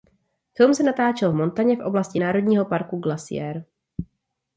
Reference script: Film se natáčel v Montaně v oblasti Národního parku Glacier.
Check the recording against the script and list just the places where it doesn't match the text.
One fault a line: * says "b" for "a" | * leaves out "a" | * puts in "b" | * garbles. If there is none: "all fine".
all fine